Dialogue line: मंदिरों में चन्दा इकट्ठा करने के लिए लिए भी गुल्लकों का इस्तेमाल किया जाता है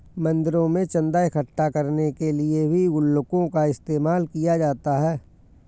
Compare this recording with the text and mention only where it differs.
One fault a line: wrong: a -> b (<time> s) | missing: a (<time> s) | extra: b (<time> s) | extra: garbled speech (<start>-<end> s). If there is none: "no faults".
missing: लिए (2.7 s)